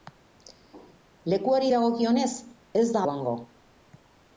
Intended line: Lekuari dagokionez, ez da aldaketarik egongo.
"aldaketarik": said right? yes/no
no